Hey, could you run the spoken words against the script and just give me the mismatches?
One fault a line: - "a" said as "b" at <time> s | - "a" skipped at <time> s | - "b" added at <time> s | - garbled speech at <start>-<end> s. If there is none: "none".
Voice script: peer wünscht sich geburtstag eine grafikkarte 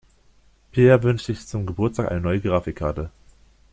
- "zum" added at 1.5 s
- "neue" added at 2.2 s